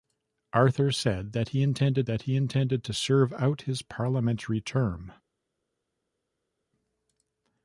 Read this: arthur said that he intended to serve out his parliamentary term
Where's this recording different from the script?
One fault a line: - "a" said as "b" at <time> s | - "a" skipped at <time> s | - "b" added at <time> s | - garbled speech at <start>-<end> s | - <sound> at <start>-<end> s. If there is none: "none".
- "that he intended" added at 2.1 s